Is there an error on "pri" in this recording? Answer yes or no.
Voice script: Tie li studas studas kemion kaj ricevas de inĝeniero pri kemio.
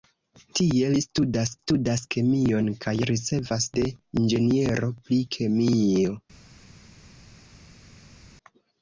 no